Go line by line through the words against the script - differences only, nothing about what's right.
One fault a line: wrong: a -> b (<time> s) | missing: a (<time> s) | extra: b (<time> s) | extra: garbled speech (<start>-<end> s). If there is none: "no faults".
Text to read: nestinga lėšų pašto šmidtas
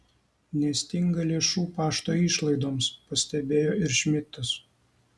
extra: išlaidoms pastebėjo ir (2.2 s)